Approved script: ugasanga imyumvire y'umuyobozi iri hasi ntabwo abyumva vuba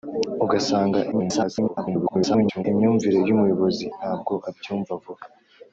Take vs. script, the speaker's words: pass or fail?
fail